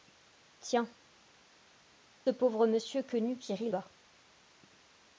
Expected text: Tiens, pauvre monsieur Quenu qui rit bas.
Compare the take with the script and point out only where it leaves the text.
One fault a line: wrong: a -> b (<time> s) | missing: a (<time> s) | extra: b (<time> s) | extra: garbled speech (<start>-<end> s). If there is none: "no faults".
no faults